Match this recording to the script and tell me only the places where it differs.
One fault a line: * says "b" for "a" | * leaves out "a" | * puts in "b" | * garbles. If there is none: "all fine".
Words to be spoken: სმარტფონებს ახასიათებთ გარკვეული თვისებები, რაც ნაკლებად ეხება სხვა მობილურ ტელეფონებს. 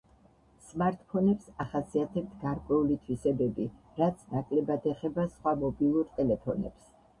all fine